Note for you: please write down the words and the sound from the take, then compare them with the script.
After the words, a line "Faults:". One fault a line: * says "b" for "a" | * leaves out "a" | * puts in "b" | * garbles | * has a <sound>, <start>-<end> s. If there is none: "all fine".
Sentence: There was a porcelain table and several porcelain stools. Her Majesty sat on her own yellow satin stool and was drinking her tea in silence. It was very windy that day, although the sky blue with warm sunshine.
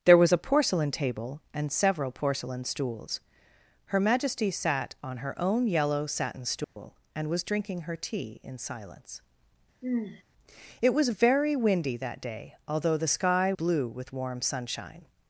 There was a porcelain table and several porcelain stools. Her Majesty sat on her own yellow satin stool and was drinking her tea in silence. It was very windy that day, although the sky blue with warm sunshine.
Faults:
* has a dropout, 6.6-6.8 s
* has a sigh, 9.8-10.2 s